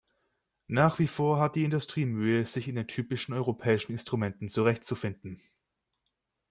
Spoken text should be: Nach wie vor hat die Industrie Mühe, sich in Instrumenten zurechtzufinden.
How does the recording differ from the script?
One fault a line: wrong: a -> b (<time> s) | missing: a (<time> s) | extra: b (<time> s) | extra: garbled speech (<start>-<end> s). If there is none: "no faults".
extra: den typischen europäischen (2.7 s)